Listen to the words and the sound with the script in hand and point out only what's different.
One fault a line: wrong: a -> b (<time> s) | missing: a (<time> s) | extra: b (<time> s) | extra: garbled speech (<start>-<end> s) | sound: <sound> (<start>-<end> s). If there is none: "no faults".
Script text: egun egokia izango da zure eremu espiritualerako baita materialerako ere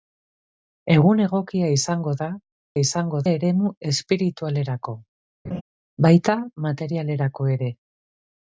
wrong: zure -> izango (2.8 s)
sound: laugh (5.4-5.6 s)